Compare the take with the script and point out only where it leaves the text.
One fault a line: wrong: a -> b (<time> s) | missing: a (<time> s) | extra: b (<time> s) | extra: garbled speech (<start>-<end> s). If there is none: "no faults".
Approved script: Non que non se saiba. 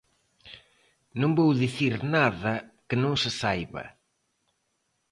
extra: vou dicir nada (1.4 s)